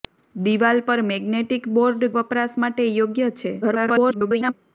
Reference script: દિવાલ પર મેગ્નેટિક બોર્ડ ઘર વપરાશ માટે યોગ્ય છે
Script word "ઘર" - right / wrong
wrong